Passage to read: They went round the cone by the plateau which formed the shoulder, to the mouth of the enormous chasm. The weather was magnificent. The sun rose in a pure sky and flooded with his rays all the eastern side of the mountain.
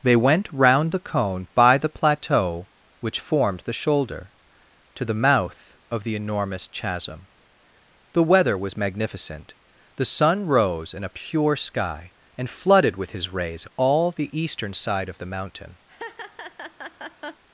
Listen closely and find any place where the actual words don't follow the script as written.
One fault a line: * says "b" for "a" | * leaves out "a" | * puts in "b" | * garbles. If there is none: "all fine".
all fine